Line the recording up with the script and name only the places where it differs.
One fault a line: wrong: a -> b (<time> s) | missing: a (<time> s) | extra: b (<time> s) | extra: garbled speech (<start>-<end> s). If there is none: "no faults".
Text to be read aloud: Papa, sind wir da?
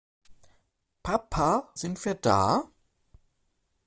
no faults